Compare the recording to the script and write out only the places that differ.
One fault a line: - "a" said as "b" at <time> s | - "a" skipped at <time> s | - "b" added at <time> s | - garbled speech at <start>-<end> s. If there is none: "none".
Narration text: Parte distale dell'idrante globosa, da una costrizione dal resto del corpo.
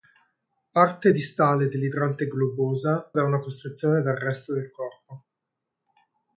none